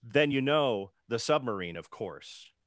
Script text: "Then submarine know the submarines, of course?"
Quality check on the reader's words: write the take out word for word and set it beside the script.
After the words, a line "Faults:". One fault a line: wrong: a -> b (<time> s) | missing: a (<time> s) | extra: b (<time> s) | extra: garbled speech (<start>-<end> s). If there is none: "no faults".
"Then you know the submarine, of course?"
Faults:
wrong: submarine -> you (0.3 s)
wrong: submarines -> submarine (1.2 s)